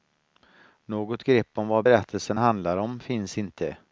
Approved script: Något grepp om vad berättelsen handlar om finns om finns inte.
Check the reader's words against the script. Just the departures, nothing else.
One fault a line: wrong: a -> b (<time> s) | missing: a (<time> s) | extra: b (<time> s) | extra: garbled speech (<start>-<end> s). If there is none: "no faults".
missing: om finns (3.4 s)